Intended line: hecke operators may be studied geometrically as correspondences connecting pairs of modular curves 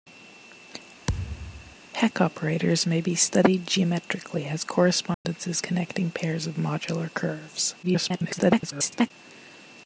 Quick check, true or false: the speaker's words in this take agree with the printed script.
false